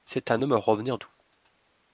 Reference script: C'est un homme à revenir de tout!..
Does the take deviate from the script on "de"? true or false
true